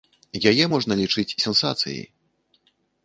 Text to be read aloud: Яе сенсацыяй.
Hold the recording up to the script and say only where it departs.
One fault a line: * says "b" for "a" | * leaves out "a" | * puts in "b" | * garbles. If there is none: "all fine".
* puts in "можна лічыць"